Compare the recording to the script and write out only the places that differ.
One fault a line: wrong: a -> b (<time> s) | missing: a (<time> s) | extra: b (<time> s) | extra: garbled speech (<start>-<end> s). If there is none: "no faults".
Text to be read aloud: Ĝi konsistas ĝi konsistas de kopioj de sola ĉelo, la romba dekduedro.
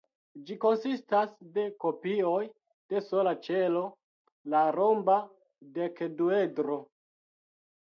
missing: ĝi konsistas (1.3 s)